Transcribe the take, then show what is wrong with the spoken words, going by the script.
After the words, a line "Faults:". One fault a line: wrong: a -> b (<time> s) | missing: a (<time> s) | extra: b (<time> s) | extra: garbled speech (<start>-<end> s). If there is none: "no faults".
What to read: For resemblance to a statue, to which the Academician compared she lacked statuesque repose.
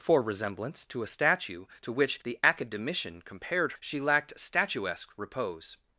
For resemblance to a statue, to which the Academician compared she lacked statuesque repose.
Faults:
no faults